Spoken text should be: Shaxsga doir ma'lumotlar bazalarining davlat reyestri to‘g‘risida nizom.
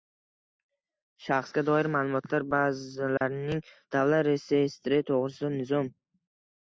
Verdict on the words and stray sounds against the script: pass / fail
fail